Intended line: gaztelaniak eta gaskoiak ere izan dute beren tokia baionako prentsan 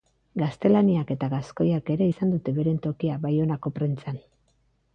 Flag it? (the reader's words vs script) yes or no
no